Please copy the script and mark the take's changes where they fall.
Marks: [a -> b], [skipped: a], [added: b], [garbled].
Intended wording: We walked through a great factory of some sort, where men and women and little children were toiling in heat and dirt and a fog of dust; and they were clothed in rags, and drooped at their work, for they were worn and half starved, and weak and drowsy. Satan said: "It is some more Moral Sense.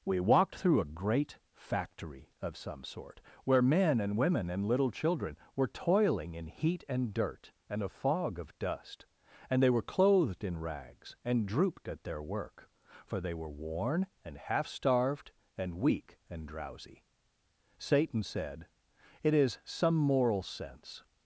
We walked through a great factory of some sort, where men and women and little children were toiling in heat and dirt and a fog of dust; and they were clothed in rags, and drooped at their work, for they were worn and half starved, and weak and drowsy. Satan said: "It is some [skipped: more] Moral Sense.